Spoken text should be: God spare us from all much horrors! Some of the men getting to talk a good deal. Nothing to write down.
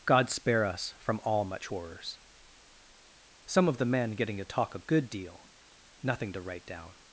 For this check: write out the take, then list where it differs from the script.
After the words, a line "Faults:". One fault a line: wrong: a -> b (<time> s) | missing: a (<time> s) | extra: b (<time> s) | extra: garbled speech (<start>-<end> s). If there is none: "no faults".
God spare us from all much horrors! Some of the men getting to talk a good deal. Nothing to write down.
Faults:
no faults